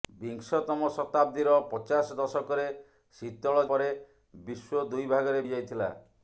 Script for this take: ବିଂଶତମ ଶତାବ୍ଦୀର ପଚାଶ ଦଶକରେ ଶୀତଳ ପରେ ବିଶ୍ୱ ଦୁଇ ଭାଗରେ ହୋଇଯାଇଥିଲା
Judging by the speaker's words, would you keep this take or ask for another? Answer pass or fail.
pass